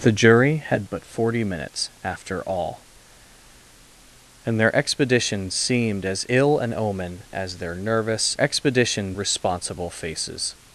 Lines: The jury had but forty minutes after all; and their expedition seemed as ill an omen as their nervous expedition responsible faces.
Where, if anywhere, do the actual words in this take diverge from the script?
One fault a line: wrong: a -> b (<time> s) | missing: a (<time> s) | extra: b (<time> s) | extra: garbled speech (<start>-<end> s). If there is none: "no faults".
no faults